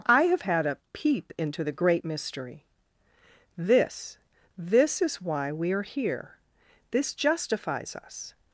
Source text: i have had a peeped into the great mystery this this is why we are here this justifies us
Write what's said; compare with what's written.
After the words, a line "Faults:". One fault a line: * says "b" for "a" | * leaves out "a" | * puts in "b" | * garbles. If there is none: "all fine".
i have had a peep into the great mystery this this is why we are here this justifies us
Faults:
* says "peep" for "peeped"